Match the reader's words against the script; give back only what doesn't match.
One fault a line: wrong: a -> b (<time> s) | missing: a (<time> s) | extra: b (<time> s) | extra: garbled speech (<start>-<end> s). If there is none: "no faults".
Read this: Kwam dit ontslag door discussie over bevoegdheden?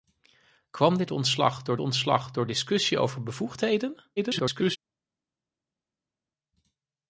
extra: ontslag door (1.8 s)
extra: garbled speech (4.2-4.8 s)